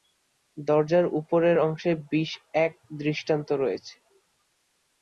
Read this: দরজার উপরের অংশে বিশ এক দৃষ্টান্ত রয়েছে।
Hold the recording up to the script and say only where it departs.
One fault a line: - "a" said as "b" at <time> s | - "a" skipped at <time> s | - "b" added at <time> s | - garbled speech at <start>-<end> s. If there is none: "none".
none